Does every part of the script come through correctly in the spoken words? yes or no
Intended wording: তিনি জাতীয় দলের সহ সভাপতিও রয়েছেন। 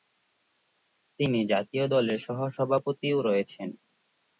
yes